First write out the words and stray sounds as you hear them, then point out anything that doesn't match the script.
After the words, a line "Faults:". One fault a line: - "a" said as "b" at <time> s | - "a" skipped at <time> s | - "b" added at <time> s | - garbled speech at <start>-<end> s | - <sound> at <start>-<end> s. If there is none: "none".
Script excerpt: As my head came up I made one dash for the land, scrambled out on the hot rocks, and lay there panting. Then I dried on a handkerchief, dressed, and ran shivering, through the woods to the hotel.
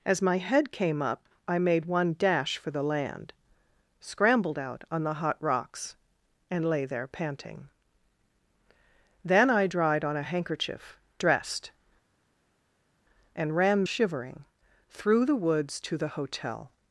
As my head came up I made one dash for the land, scrambled out on the hot rocks, and lay there panting. Then I dried on a handkerchief, dressed, and ran shivering, through the woods to the hotel.
Faults:
none